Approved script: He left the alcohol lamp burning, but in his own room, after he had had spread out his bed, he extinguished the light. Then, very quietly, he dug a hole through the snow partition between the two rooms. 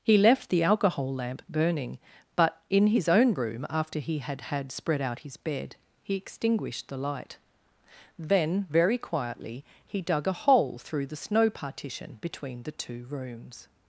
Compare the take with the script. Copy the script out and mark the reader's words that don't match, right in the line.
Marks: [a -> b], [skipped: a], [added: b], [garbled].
He left the alcohol lamp burning, but in his own room, after he had had spread out his bed, he extinguished the light. Then, very quietly, he dug a hole through the snow partition between the two rooms.